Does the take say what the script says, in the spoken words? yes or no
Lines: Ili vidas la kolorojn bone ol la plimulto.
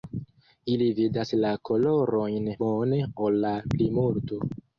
yes